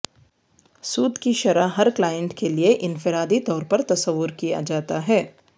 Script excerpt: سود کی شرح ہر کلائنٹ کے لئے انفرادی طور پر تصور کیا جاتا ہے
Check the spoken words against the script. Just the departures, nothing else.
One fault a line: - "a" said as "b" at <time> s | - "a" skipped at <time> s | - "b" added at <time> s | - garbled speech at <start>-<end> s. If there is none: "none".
none